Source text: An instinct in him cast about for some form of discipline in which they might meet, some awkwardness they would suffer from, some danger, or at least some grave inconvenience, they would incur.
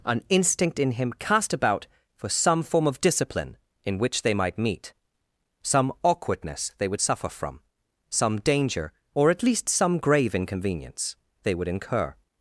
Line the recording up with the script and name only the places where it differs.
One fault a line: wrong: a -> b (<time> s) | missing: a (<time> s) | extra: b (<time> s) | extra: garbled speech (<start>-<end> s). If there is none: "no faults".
no faults